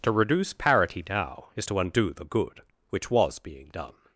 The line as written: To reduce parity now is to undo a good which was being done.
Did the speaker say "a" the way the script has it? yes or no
no